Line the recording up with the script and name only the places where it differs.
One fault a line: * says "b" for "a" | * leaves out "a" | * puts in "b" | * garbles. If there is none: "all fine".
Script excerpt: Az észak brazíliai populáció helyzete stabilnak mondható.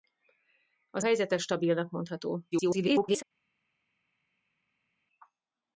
* leaves out "észak brazíliai populáció"
* garbles